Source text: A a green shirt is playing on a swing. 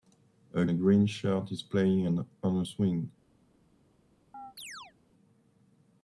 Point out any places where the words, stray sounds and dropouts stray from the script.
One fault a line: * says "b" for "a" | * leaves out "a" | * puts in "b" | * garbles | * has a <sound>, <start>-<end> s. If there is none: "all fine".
* has a chirp, 4.3-4.9 s